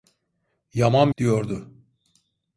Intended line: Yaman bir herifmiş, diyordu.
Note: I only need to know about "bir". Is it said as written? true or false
false